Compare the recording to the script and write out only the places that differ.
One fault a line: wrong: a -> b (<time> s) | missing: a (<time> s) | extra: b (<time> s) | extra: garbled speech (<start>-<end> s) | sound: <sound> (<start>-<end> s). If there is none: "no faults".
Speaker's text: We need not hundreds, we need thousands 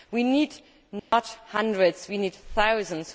sound: dropout (1.0-1.1 s)